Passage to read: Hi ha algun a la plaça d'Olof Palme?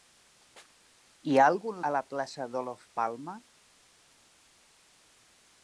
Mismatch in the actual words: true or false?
false